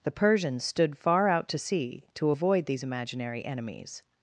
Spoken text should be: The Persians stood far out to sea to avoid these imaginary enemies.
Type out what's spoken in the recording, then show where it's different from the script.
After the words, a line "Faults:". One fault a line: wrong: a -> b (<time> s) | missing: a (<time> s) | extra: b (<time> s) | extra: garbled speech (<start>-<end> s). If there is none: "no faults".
The Persians stood far out to sea to avoid these imaginary enemies.
Faults:
no faults